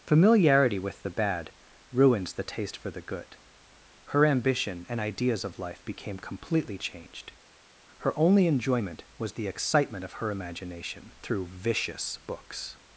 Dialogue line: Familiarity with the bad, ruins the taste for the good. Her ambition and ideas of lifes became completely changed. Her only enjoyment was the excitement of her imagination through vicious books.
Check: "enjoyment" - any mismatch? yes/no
no